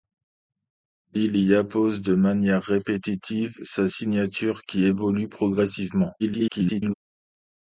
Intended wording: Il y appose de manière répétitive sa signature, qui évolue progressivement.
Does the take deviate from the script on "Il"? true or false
false